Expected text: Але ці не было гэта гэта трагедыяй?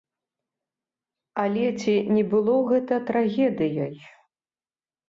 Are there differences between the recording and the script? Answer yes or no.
yes